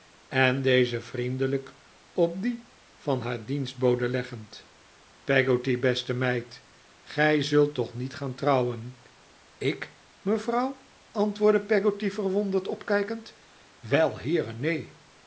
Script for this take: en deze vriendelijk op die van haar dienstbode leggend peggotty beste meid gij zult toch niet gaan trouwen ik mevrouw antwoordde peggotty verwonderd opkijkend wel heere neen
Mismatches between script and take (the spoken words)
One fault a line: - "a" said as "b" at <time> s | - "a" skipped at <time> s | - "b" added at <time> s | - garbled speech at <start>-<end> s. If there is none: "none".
none